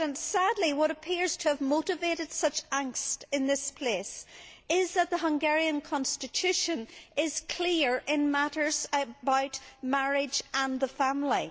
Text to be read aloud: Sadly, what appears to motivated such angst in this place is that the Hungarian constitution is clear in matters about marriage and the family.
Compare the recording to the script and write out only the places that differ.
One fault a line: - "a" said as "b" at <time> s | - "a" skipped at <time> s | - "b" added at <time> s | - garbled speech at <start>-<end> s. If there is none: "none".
- "have" added at 1.5 s